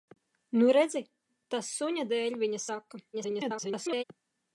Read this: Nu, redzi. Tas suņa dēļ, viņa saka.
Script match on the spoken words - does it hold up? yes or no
no